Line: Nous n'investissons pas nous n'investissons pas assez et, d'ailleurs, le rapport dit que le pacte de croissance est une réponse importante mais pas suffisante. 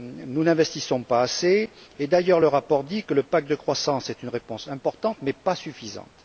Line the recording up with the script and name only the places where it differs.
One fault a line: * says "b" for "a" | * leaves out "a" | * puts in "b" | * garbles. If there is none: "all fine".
* leaves out "nous n'investissons pas"